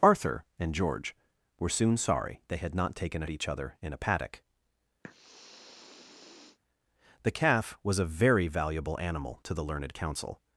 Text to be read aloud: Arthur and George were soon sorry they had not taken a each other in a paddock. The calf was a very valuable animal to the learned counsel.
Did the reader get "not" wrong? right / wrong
right